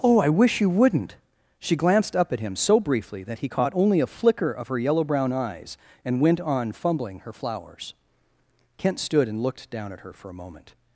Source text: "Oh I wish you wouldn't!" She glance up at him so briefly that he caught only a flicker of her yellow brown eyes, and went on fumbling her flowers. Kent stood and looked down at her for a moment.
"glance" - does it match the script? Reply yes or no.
no